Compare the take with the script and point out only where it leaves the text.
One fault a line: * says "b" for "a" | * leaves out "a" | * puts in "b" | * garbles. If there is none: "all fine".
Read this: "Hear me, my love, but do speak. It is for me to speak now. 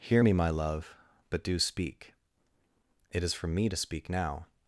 all fine